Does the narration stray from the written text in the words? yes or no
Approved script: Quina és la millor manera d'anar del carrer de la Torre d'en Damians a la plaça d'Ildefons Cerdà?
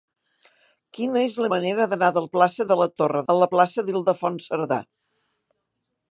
yes